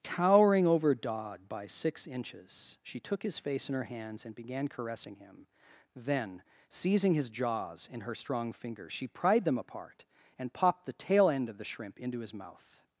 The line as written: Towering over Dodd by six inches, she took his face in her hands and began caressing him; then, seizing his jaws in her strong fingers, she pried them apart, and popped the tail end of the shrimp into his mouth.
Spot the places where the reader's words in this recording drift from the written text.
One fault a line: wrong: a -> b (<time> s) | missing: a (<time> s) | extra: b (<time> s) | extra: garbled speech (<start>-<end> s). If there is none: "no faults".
no faults